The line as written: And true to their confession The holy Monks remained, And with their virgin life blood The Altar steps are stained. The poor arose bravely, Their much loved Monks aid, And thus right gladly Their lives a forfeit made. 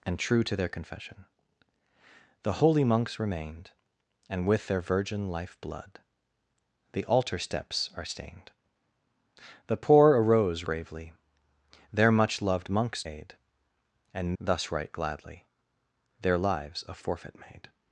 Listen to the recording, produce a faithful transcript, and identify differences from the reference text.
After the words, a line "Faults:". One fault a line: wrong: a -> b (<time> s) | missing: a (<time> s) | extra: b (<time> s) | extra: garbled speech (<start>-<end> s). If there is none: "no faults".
And true to their confession The holy Monks remained, And with their virgin life blood The Altar steps are stained. The poor arose bravely, Their much loved Monks aid, And thus right gladly Their lives a forfeit made.
Faults:
no faults